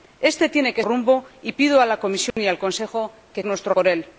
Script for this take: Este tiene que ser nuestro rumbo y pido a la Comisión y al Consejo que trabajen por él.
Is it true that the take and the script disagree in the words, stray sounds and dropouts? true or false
true